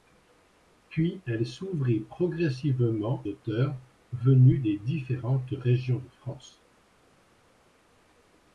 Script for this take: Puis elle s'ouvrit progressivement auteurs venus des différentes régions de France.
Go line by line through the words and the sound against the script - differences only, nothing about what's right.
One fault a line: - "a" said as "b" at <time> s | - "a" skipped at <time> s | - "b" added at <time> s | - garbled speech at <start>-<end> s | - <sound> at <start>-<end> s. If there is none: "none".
none